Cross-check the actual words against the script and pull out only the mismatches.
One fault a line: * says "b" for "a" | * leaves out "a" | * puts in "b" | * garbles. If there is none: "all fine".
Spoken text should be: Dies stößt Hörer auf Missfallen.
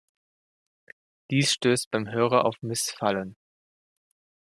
* puts in "beim"